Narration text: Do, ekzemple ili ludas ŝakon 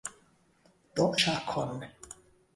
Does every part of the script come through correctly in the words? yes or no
no